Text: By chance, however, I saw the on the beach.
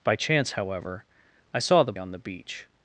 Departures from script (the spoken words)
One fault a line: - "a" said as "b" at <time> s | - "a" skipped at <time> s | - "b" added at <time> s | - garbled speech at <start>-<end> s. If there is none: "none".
none